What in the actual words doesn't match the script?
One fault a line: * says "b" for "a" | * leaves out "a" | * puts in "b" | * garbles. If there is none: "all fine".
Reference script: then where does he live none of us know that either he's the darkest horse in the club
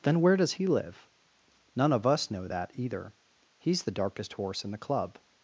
all fine